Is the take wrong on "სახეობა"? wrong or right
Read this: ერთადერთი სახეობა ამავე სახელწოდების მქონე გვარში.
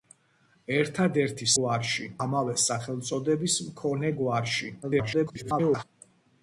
wrong